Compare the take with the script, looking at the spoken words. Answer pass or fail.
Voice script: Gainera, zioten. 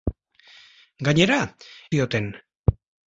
pass